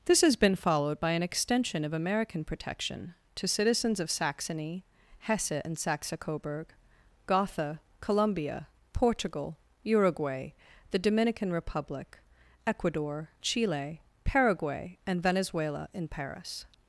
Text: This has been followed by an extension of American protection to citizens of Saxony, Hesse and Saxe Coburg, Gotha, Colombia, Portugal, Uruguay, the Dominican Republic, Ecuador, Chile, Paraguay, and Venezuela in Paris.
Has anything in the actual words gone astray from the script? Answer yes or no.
no